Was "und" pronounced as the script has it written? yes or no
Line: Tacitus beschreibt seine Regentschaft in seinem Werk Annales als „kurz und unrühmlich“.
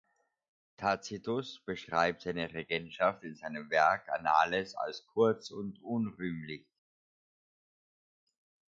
yes